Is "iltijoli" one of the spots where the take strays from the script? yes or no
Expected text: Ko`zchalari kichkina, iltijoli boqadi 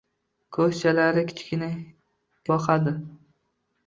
yes